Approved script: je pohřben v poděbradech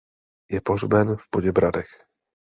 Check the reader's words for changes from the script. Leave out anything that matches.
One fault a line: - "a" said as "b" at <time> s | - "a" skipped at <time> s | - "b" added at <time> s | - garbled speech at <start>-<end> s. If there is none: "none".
none